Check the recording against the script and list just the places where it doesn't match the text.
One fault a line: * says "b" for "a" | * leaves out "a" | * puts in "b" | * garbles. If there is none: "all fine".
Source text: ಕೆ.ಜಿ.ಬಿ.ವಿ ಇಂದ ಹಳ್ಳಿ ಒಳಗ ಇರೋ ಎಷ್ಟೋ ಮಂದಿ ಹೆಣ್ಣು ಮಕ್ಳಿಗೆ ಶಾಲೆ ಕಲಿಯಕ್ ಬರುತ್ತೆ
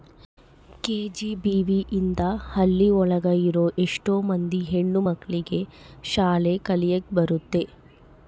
all fine